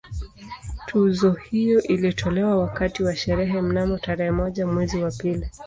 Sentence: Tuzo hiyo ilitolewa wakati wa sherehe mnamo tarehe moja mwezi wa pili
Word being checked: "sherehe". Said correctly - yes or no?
yes